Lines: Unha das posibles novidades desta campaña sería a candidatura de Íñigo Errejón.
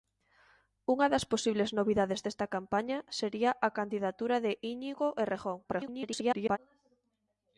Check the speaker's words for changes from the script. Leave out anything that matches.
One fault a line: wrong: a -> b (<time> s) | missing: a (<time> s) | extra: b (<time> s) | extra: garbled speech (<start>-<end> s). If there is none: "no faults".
extra: garbled speech (5.6-6.6 s)